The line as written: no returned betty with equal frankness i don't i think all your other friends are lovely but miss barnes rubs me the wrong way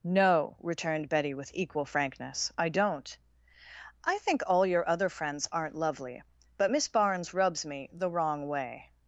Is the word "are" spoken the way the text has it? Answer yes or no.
no